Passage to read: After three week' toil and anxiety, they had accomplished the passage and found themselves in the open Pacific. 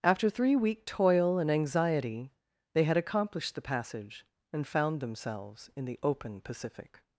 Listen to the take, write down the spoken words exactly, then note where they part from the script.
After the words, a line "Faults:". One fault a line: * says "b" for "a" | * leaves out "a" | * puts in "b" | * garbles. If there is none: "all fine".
After three week' toil and anxiety, they had accomplished the passage and found themselves in the open Pacific.
Faults:
all fine